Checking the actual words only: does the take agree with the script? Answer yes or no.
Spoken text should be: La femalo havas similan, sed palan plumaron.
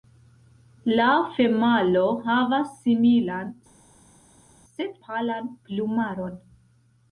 yes